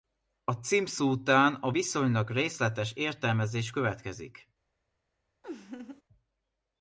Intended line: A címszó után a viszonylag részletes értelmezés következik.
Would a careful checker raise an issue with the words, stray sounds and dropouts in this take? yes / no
yes